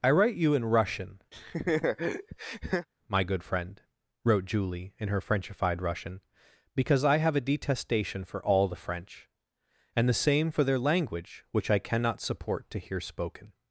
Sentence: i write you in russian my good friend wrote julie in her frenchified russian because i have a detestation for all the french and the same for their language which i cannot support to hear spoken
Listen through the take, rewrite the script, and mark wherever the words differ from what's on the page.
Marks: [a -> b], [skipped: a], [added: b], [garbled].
i write you in russian my good friend wrote julie in her frenchified russian because i have a detestation for all the french and the same for their language which i cannot support to hear spoken